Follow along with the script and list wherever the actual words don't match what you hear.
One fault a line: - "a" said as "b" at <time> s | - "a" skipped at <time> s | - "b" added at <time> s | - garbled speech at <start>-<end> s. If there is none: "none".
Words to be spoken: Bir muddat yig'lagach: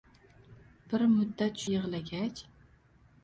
none